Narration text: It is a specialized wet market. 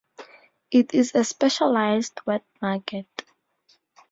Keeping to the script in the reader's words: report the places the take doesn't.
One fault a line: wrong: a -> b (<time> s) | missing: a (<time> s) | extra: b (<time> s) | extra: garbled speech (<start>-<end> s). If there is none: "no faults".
no faults